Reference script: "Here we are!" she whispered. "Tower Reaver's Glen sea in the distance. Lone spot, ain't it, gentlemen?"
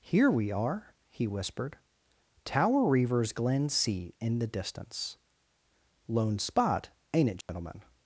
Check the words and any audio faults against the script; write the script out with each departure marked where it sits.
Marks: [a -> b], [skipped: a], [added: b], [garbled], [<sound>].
"Here we are!" [she -> he] whispered. "Tower Reaver's Glen sea in the distance. Lone spot, ain't it, gentlemen?" [dropout]